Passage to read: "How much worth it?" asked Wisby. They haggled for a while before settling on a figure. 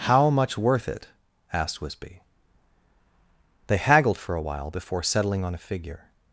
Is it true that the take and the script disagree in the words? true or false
false